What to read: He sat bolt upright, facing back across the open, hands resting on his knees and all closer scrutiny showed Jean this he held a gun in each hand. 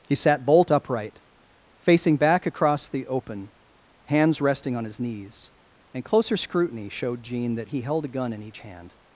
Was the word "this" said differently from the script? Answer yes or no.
yes